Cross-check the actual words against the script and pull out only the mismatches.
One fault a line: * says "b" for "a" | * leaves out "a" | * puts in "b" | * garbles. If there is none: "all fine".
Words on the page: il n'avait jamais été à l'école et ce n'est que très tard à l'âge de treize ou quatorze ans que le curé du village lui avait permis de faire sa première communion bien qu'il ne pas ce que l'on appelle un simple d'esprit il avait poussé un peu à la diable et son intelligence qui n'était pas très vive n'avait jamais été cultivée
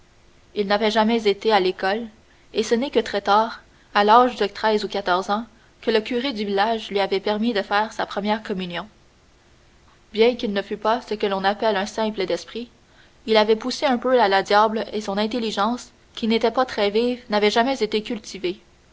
* puts in "fût"